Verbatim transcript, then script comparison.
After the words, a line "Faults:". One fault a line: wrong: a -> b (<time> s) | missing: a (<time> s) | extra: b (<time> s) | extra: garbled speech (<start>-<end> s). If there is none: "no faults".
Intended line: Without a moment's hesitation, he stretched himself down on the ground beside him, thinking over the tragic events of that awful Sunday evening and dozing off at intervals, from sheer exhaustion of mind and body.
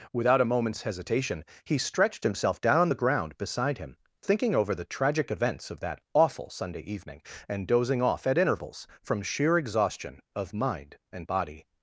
Without a moment's hesitation, he stretched himself down on the ground beside him, thinking over the tragic events of that awful Sunday evening and dozing off at intervals, from sheer exhaustion of mind and body.
Faults:
no faults